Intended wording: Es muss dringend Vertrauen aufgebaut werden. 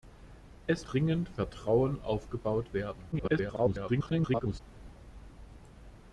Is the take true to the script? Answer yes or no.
no